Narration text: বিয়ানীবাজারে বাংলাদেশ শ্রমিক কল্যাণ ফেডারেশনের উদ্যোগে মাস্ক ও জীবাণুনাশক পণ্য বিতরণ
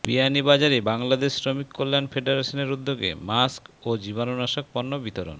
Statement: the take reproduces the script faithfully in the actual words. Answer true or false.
true